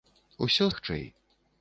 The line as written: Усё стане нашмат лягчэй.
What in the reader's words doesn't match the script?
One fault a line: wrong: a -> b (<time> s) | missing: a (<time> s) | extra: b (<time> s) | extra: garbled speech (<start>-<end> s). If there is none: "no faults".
missing: стане нашмат (0.7 s)